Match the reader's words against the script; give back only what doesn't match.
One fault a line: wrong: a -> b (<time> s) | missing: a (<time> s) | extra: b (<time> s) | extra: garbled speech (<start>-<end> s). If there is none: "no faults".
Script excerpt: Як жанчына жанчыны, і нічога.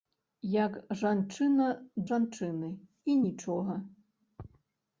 no faults